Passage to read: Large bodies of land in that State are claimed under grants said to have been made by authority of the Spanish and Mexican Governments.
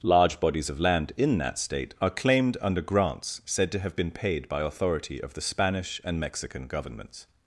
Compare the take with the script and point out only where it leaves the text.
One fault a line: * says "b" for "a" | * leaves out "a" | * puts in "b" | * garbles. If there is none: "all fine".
* says "paid" for "made"